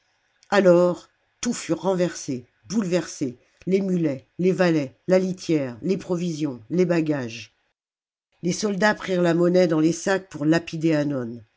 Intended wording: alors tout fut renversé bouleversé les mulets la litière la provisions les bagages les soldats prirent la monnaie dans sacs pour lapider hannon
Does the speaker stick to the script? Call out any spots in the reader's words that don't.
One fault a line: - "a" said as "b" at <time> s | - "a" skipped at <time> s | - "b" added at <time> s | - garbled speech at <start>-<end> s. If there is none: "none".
- "les valets" added at 4.4 s
- "la" said as "les" at 5.8 s
- "les" added at 9.8 s